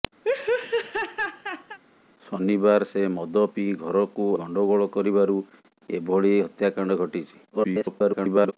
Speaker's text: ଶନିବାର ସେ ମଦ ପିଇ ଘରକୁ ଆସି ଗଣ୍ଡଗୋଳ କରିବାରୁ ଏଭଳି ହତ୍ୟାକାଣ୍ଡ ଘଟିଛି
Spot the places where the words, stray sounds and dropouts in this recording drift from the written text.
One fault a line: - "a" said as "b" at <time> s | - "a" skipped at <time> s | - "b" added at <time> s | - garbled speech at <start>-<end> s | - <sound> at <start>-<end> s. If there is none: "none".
- laugh at 0.2-1.8 s
- "ଆସି" skipped at 4.3 s
- garbled speech at 7.5-8.5 s